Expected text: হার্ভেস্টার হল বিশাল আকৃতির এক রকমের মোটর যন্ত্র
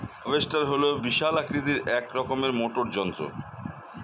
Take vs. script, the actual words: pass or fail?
pass